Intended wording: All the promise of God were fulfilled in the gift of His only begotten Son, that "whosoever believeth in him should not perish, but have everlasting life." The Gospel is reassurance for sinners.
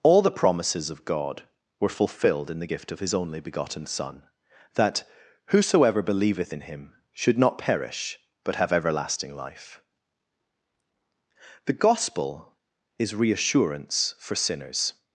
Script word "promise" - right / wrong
wrong